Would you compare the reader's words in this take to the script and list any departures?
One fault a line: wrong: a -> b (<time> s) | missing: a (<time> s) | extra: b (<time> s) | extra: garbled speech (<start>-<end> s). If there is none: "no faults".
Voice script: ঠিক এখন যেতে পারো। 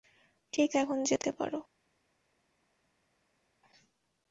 no faults